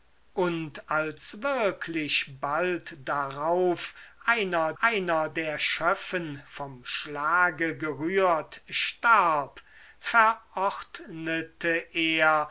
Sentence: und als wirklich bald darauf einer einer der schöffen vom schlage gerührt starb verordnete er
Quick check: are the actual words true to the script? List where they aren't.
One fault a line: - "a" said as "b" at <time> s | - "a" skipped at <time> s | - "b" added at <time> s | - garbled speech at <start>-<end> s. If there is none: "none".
none